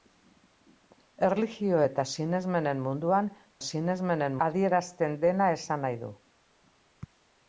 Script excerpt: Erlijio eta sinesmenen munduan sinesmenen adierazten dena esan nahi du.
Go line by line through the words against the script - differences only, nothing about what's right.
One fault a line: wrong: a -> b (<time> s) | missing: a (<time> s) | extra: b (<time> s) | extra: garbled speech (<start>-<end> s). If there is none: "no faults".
no faults